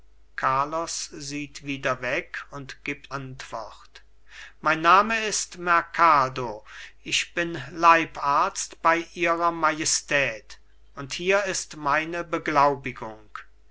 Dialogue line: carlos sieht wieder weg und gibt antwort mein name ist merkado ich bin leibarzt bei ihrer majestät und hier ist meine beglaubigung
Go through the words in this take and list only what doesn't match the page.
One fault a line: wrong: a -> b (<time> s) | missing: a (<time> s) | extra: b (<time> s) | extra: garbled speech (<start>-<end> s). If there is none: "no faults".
no faults